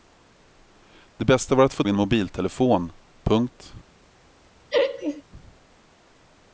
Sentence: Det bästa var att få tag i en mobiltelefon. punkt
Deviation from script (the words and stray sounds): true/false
true